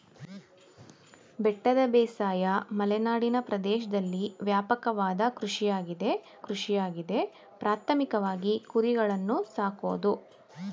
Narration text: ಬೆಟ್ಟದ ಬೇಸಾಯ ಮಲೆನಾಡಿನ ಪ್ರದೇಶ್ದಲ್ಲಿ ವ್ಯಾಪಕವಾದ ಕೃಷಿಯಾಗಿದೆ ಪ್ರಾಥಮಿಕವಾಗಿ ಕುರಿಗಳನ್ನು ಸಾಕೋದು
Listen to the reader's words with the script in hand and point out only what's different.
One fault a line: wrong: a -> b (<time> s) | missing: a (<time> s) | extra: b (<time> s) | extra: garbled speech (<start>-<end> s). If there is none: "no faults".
extra: ಕೃಷಿಯಾಗಿದೆ (6.4 s)